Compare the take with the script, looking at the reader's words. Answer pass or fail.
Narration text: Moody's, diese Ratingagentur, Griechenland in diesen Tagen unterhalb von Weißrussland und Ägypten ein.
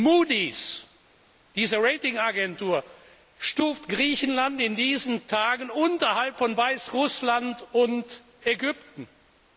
fail